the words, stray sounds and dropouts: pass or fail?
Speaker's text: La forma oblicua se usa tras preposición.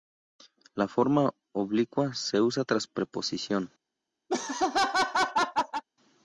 fail